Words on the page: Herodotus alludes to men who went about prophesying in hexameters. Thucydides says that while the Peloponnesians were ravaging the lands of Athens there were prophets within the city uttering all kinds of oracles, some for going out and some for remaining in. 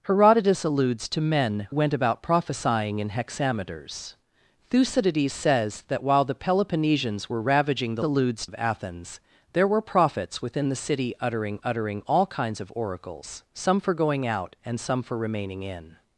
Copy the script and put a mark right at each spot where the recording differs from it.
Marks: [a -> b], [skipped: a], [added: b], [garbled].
Herodotus alludes to men [skipped: who] went about prophesying in hexameters. Thucydides says that while the Peloponnesians were ravaging the [lands -> alludes] of Athens there were prophets within the city uttering [added: uttering] all kinds of oracles, some for going out and some for remaining in.